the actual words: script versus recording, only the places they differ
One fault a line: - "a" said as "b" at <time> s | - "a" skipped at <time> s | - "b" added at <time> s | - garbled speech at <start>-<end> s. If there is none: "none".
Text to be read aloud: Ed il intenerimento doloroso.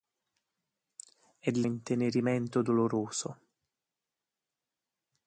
none